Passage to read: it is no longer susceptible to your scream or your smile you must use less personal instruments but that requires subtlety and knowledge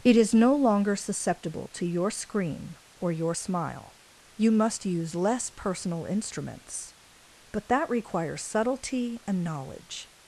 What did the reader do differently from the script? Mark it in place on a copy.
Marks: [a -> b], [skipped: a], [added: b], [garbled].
it is no longer susceptible to your scream or your smile you must use less personal instruments but that requires subtlety and knowledge